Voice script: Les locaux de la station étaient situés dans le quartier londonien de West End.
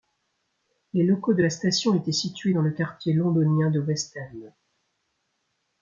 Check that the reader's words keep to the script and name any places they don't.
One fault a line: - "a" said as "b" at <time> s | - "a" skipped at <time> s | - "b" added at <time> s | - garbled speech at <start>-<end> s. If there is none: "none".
none